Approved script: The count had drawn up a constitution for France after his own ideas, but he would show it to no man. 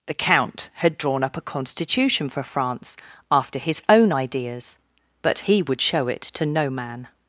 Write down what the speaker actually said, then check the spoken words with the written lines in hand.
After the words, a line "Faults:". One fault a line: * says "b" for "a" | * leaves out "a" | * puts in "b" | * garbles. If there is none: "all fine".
The count had drawn up a constitution for France after his own ideas, but he would show it to no man.
Faults:
all fine